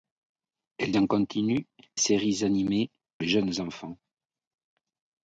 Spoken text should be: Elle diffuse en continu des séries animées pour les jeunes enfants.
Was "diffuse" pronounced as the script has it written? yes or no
no